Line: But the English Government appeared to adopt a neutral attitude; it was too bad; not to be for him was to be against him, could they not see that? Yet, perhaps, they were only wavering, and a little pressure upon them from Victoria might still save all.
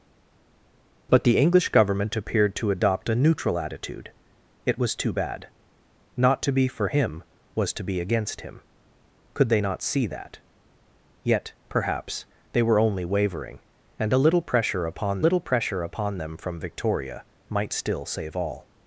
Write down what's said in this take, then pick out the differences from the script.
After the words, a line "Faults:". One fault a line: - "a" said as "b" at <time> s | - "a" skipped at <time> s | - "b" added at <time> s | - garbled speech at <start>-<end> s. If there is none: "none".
But the English Government appeared to adopt a neutral attitude; it was too bad; not to be for him was to be against him, could they not see that? Yet, perhaps, they were only wavering, and a little pressure upon little pressure upon them from Victoria might still save all.
Faults:
- "little pressure upon" added at 15.2 s